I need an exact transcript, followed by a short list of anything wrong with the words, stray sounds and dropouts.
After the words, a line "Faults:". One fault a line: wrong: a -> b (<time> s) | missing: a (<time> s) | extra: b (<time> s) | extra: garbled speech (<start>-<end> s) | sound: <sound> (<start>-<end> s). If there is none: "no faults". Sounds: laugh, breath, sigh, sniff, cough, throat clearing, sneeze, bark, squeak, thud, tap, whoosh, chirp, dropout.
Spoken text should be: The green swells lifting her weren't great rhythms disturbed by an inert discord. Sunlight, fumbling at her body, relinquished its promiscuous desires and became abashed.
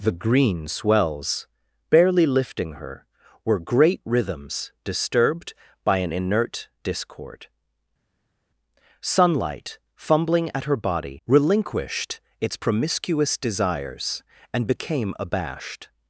The green swells barely lifting her were great rhythms disturbed by an inert discord. Sunlight, fumbling at her body, relinquished its promiscuous desires and became abashed.
Faults:
extra: barely (1.9 s)
wrong: weren't -> were (3.5 s)